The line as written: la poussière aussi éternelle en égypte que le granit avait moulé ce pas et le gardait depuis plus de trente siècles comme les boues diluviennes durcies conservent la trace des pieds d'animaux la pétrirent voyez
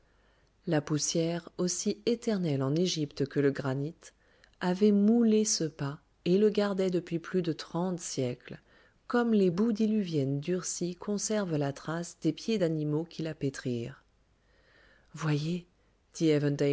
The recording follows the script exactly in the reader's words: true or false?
false